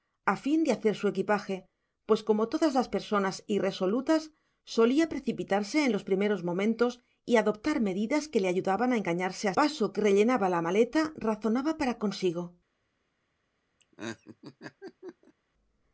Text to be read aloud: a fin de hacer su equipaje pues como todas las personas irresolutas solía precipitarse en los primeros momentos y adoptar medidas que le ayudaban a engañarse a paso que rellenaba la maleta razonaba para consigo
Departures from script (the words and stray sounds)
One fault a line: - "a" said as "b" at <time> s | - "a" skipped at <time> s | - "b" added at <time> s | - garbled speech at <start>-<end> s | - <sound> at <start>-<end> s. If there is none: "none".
- laugh at 13.8-15.3 s